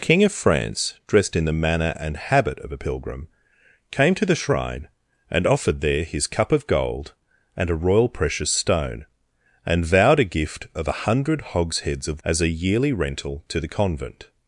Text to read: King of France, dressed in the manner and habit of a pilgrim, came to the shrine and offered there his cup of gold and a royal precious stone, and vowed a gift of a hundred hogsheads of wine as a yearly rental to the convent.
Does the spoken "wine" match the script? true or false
false